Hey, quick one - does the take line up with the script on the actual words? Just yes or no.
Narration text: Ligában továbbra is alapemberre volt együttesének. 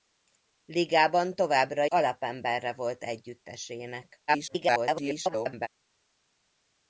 no